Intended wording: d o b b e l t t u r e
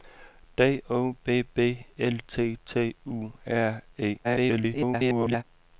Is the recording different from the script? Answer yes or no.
yes